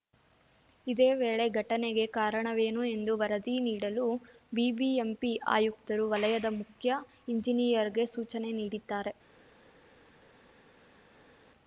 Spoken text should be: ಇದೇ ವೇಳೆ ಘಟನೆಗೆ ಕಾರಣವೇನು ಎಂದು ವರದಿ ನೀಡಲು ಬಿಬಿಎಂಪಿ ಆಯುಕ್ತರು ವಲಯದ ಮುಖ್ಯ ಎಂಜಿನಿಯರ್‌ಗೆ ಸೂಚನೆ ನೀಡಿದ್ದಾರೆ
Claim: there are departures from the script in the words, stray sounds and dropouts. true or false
false